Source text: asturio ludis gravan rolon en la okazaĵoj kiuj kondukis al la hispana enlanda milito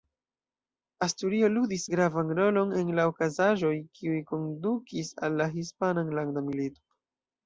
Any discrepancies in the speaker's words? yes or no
no